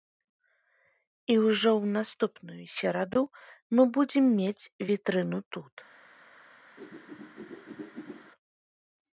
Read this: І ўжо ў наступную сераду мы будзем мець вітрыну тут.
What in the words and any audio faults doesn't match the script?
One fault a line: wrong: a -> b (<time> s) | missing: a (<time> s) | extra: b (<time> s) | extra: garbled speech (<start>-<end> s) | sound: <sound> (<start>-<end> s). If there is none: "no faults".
sound: whoosh (6.8-8.3 s)